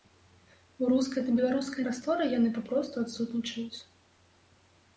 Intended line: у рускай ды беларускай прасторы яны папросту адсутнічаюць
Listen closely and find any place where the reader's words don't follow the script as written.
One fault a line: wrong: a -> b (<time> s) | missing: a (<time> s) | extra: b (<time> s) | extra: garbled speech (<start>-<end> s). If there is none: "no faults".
no faults